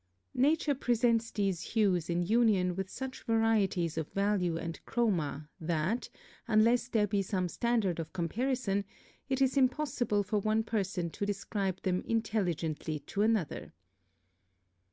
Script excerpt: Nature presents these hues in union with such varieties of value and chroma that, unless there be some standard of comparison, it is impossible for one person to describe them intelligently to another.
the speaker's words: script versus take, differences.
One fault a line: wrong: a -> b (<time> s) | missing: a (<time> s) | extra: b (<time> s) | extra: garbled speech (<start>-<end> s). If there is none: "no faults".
no faults